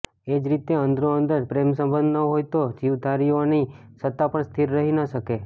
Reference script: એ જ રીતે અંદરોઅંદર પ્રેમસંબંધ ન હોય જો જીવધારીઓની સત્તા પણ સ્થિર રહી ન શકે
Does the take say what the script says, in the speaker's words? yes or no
no